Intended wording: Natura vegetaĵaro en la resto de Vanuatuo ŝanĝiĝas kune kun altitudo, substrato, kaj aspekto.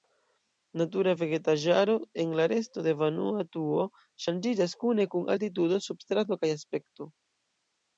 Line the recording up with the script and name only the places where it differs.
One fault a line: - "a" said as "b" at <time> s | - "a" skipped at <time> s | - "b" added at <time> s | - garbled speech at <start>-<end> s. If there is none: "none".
none